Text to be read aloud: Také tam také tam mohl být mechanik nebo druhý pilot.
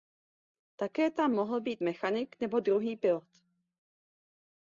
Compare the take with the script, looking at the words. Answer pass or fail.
fail